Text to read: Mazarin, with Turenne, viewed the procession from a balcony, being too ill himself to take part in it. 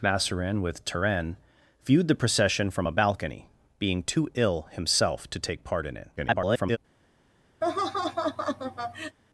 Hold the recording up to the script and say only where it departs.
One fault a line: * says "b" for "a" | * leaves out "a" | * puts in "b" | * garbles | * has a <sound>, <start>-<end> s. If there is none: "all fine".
* garbles
* has a laugh, 7.6-9.2 s